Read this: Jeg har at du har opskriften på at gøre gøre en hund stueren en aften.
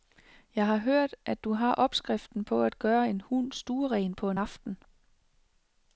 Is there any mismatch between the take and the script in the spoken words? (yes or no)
yes